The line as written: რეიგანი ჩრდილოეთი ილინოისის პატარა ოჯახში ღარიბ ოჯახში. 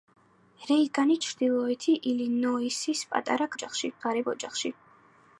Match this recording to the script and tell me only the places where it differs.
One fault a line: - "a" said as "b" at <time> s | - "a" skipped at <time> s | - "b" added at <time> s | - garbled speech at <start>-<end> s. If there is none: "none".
none